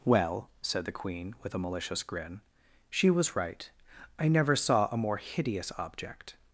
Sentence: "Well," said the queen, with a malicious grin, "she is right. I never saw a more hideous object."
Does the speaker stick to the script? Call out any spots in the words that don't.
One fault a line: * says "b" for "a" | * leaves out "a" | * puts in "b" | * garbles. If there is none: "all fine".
* says "was" for "is"